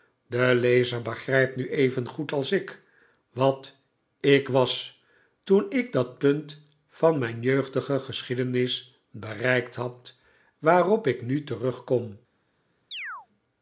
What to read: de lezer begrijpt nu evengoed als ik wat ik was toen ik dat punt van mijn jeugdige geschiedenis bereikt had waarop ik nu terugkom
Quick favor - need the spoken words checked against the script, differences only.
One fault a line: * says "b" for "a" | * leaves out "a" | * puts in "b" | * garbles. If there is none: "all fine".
all fine